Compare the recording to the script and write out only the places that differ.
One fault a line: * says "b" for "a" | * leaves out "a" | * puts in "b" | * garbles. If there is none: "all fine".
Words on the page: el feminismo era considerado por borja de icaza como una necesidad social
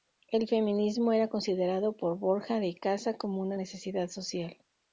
all fine